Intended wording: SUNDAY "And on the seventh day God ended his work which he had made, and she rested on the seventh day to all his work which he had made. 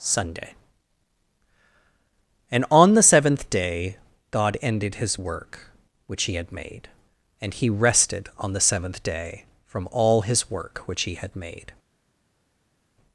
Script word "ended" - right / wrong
right